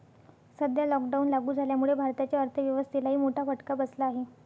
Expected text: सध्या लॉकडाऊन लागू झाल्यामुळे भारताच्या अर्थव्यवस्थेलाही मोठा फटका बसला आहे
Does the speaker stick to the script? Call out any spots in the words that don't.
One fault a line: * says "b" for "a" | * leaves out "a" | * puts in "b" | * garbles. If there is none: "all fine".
all fine